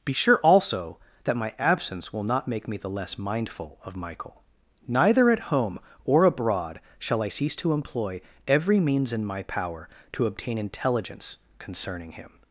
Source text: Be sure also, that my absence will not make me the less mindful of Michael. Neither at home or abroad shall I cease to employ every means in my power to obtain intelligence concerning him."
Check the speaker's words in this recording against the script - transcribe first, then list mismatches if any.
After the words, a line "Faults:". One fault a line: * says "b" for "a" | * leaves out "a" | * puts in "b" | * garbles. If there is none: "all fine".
Be sure also, that my absence will not make me the less mindful of Michael. Neither at home or abroad shall I cease to employ every means in my power to obtain intelligence concerning him."
Faults:
all fine